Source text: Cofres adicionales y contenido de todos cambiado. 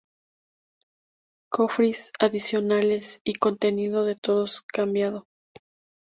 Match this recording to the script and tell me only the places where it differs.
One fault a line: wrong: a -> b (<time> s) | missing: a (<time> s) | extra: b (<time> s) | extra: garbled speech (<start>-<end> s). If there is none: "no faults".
no faults